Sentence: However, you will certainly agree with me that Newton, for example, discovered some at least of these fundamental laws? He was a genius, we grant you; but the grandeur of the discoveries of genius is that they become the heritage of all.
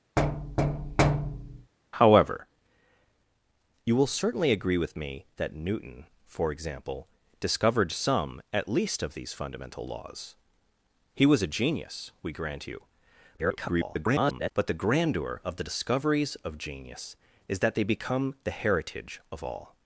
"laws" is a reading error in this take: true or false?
false